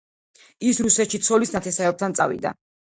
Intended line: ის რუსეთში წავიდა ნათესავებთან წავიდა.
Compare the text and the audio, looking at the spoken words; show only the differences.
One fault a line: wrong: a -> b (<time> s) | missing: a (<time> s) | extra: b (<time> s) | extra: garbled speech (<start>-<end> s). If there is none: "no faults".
wrong: წავიდა -> ცოლის (1.3 s)